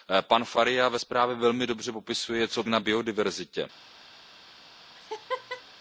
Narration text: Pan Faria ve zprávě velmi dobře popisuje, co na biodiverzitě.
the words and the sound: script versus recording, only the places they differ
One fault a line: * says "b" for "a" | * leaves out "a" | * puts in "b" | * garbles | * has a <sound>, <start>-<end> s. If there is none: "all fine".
* has a laugh, 4.9-5.6 s